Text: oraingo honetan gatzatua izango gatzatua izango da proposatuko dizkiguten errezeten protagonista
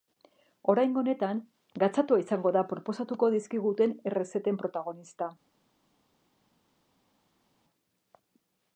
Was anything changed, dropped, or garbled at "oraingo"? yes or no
no